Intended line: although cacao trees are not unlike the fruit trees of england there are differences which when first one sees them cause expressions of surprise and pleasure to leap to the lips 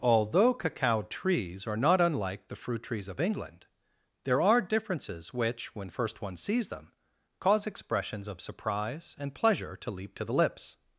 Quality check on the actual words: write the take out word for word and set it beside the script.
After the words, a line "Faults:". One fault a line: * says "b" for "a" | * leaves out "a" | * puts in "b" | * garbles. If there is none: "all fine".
although cacao trees are not unlike the fruit trees of england there are differences which when first one sees them cause expressions of surprise and pleasure to leap to the lips
Faults:
all fine